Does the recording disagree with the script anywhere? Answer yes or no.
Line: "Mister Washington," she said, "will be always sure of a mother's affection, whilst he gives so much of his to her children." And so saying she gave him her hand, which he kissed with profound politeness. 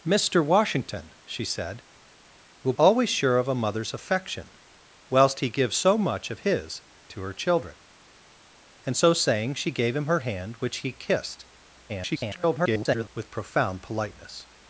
yes